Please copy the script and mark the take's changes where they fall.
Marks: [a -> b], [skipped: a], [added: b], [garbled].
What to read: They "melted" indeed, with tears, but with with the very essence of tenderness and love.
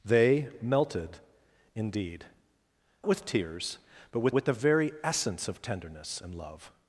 They "melted" indeed, with tears, but with with the very essence of tenderness and love.